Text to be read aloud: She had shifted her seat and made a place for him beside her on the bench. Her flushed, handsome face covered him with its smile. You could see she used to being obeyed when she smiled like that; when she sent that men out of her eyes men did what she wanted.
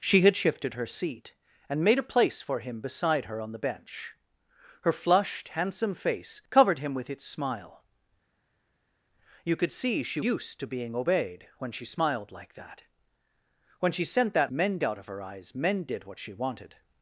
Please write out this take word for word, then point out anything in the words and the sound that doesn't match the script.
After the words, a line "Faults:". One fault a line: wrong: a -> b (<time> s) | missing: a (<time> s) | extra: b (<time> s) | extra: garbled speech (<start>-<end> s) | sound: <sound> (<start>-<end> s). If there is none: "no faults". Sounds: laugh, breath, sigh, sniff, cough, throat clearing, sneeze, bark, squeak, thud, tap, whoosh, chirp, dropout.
She had shifted her seat and made a place for him beside her on the bench. Her flushed, handsome face covered him with its smile. You could see she used to being obeyed when she smiled like that; when she sent that men out of her eyes men did what she wanted.
Faults:
no faults